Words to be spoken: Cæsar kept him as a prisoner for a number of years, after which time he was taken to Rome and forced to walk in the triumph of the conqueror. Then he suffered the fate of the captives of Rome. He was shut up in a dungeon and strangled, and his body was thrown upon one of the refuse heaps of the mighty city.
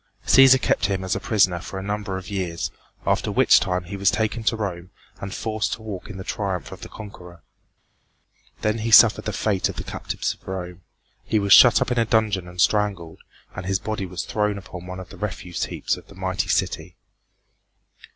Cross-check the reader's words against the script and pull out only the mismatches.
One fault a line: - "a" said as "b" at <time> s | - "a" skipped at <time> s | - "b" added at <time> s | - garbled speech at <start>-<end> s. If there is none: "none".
none